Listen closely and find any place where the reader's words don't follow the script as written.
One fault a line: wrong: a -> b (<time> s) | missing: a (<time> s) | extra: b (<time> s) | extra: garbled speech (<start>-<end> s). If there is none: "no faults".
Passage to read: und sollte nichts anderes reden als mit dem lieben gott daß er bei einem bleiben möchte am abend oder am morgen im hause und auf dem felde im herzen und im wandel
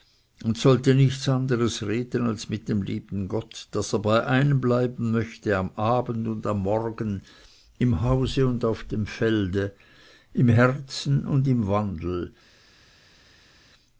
wrong: oder -> und (6.3 s)